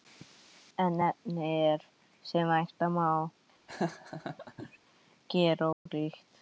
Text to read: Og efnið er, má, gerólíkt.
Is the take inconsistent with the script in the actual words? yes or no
yes